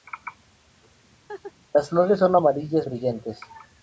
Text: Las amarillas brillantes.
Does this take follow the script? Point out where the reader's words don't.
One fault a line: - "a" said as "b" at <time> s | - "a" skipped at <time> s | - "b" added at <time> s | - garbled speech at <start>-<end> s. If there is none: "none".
- "flores son" added at 1.9 s